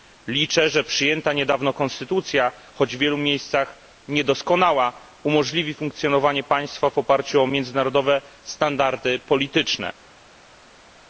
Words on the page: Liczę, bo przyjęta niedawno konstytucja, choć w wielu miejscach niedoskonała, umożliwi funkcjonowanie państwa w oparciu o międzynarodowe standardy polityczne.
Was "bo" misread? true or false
true